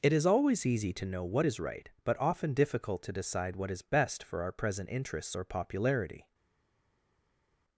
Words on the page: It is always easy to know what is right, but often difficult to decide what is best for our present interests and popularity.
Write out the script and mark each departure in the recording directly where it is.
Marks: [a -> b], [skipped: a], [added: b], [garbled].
It is always easy to know what is right, but often difficult to decide what is best for our present interests [and -> or] popularity.